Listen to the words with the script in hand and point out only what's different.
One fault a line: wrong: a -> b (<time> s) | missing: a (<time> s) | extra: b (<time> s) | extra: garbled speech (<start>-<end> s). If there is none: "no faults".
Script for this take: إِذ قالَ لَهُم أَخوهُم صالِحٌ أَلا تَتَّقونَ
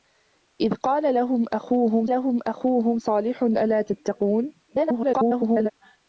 extra: لَهُم أَخوهُم (2.1 s)
extra: garbled speech (4.7-5.7 s)